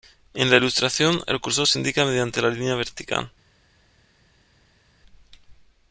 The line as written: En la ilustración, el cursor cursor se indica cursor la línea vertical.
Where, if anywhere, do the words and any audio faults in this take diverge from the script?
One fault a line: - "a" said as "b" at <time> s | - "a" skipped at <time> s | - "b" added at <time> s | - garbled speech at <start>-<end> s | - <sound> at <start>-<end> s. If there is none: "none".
- "cursor" skipped at 1.7 s
- "cursor" said as "mediante" at 2.0 s